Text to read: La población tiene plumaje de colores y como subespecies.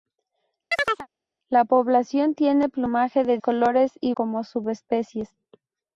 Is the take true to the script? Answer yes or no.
yes